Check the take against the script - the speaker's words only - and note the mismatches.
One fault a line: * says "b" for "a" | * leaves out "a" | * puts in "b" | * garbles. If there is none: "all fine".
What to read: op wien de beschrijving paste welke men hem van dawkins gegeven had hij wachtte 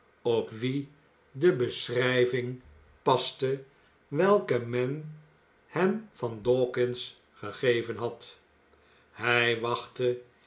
all fine